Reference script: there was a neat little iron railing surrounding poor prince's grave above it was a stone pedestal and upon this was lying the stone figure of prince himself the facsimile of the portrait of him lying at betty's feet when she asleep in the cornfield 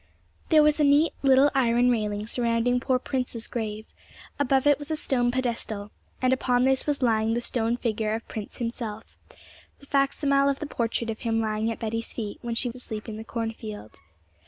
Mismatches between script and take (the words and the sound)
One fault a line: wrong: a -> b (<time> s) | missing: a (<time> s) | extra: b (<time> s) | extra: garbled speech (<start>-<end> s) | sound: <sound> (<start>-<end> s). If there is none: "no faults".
no faults